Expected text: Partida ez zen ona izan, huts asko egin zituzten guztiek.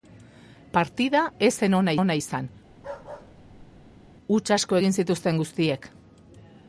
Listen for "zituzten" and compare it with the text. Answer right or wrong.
right